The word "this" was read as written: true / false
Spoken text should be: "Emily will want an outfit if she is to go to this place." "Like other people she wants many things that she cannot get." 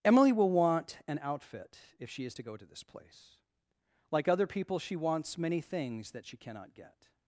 true